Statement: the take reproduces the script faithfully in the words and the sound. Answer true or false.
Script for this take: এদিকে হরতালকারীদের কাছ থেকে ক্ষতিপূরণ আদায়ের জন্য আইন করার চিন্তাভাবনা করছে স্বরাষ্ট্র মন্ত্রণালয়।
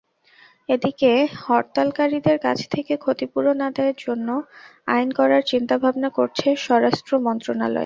true